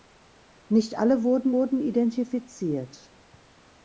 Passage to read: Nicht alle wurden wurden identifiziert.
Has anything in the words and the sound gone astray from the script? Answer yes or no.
no